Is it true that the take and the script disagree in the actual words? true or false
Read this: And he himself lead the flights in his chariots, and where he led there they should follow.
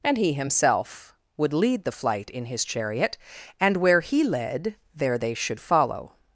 true